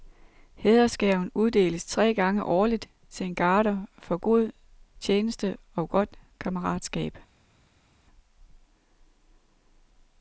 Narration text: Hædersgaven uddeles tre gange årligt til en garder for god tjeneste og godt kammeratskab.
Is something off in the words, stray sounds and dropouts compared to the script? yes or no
no